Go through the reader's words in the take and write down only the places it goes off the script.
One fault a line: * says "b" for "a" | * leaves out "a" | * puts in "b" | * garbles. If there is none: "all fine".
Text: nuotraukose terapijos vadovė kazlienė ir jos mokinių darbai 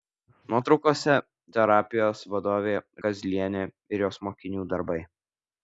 all fine